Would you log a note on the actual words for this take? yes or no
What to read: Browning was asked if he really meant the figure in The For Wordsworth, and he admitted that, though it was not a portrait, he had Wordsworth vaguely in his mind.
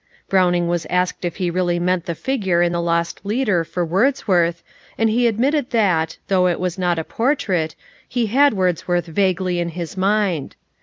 yes